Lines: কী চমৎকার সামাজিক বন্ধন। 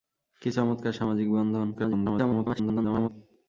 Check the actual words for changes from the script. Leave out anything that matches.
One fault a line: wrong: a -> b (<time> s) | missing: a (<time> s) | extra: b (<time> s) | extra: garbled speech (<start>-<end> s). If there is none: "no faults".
extra: garbled speech (1.7-3.1 s)